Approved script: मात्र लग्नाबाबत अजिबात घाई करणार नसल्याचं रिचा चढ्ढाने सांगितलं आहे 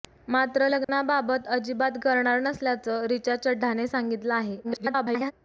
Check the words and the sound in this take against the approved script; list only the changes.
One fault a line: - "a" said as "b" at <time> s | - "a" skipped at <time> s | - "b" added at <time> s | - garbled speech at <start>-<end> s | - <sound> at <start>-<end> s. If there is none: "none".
- dropout at 0.8-0.9 s
- "घाई" skipped at 2.0 s
- garbled speech at 4.6-5.3 s